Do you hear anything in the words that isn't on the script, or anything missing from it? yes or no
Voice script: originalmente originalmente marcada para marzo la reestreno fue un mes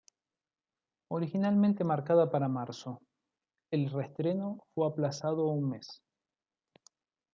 yes